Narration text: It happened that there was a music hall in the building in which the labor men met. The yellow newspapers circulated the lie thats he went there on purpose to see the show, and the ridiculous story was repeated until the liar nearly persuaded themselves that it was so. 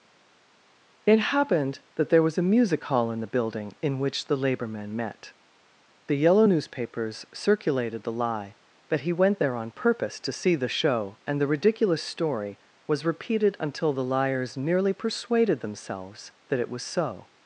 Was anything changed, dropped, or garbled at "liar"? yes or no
yes